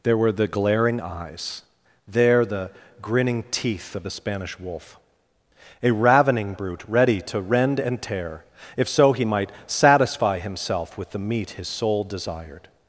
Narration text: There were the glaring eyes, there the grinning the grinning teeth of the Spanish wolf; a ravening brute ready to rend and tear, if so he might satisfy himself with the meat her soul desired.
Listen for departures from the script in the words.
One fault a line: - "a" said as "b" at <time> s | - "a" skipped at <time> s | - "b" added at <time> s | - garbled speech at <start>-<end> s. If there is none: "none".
- "the grinning" skipped at 3.4 s
- "her" said as "his" at 11.5 s